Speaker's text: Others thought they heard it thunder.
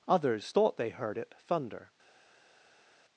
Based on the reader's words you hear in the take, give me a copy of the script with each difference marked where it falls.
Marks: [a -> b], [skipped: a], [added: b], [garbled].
Others thought they heard it thunder.